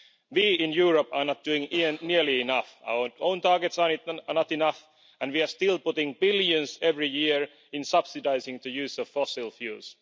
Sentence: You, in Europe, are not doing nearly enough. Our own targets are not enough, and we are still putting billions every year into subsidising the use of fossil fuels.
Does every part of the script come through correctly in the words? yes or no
no